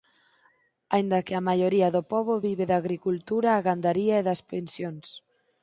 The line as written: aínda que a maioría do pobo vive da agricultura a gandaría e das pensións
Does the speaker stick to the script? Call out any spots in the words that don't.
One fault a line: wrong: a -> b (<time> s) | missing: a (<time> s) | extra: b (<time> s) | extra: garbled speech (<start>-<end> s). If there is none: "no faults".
no faults